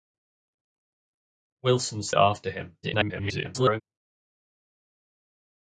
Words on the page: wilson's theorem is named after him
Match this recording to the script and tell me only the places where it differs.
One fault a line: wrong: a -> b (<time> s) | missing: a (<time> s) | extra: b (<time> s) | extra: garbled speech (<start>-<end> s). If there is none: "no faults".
missing: theorem is named (2.1 s)
extra: garbled speech (2.8-3.8 s)